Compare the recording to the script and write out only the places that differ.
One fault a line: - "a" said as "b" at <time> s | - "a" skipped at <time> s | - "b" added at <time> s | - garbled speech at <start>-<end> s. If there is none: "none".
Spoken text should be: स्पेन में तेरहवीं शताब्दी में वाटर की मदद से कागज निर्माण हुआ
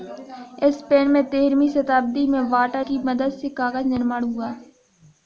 none